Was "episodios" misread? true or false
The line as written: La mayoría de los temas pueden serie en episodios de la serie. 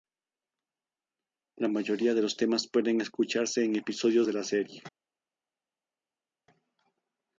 false